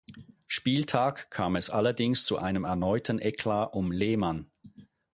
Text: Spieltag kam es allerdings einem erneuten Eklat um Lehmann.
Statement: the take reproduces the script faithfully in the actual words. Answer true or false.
false